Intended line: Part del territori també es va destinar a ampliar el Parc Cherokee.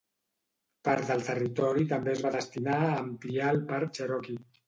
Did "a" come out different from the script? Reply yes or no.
no